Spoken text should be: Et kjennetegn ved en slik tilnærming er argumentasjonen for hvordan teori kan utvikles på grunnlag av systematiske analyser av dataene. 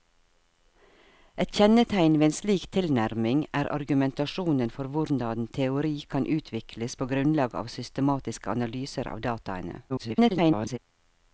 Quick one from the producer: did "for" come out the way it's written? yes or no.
yes